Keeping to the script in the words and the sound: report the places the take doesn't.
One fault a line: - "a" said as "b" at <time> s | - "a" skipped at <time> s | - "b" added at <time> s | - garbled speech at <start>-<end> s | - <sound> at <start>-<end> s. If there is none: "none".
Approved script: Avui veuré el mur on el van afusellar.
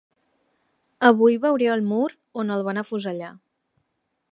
none